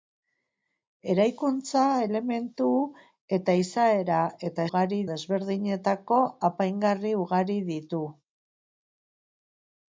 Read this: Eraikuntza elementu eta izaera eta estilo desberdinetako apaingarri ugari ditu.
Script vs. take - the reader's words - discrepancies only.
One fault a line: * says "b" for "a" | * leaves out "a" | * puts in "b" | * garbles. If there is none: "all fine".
* says "ugari" for "estilo"